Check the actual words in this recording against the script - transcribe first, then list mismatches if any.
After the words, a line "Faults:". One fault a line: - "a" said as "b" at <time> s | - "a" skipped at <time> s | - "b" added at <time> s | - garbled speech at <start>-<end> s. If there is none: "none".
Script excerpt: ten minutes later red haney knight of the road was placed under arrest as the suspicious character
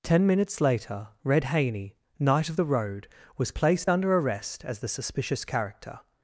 ten minutes later red haney knight of the road was placed under arrest as the suspicious character
Faults:
none